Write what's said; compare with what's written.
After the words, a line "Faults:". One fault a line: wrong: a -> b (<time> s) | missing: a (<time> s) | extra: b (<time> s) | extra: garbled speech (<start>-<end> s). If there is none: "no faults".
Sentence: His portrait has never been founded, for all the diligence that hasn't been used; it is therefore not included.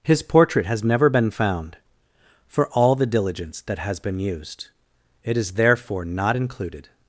His portrait has never been found, for all the diligence that has been used; it is therefore not included.
Faults:
wrong: founded -> found (1.3 s)
wrong: hasn't -> has (3.8 s)